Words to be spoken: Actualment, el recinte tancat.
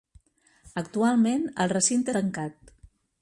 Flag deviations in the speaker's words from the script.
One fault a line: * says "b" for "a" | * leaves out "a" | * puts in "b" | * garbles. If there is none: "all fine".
all fine